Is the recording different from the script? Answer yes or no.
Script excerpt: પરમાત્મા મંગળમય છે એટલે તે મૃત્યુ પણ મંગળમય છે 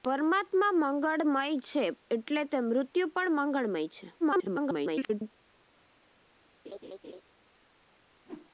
yes